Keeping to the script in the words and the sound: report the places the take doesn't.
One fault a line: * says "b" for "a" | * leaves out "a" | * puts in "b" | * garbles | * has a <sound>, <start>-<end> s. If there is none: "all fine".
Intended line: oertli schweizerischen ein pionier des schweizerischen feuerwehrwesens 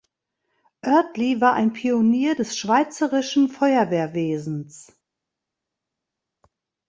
* says "war" for "schweizerischen"